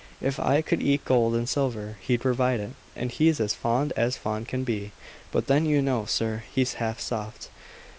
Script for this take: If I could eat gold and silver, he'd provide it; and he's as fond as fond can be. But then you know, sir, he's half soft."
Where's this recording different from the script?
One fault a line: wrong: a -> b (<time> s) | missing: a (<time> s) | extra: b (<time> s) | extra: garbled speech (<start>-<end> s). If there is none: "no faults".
no faults